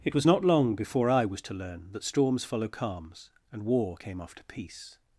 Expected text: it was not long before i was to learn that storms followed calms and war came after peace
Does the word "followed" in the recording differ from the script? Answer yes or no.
yes